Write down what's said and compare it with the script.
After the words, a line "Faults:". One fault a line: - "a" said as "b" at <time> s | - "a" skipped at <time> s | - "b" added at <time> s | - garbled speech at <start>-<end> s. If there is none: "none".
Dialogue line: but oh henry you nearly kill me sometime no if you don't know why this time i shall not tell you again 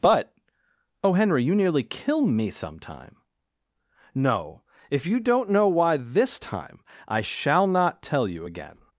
but oh henry you nearly kill me sometime no if you don't know why this time i shall not tell you again
Faults:
none